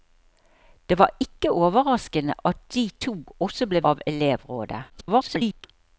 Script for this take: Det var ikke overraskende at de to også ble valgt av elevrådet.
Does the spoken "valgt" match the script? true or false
false